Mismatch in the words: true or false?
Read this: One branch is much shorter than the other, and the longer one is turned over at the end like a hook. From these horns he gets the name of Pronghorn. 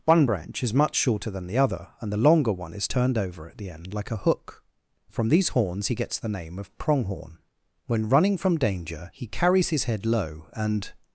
true